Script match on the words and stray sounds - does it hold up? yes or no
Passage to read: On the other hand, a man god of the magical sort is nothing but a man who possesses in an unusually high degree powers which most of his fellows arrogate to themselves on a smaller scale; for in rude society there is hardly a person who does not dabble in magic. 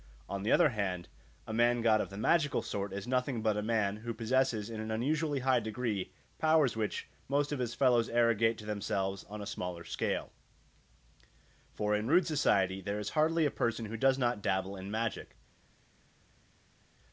yes